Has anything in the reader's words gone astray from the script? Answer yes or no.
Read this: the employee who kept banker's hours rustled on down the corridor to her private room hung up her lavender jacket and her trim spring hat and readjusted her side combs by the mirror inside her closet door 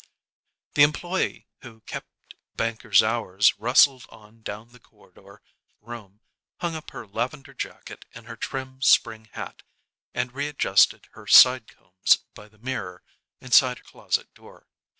yes